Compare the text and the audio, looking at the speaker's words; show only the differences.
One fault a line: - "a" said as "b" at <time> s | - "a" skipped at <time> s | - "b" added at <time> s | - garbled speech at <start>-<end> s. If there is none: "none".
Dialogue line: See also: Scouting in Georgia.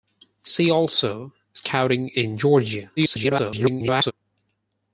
- garbled speech at 3.0-4.1 s